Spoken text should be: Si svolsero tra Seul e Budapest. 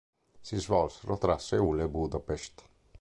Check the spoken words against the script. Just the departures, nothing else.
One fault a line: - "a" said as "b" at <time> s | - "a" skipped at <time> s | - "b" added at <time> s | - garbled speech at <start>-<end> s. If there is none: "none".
none